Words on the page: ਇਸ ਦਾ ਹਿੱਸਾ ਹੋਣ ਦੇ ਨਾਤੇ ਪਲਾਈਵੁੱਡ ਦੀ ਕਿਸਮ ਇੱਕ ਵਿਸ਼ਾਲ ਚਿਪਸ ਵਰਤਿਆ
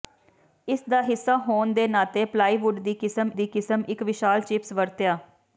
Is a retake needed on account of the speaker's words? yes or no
yes